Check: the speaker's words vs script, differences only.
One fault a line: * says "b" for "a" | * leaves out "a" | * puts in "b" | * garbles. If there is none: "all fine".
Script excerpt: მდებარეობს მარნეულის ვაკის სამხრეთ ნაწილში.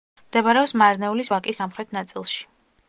all fine